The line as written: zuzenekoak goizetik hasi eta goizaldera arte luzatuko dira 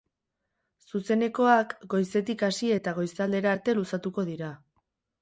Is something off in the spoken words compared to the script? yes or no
no